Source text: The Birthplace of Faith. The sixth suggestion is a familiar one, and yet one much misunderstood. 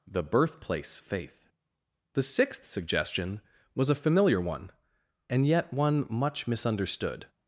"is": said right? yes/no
no